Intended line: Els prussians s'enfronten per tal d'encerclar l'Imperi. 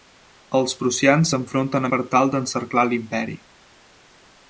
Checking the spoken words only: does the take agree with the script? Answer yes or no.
yes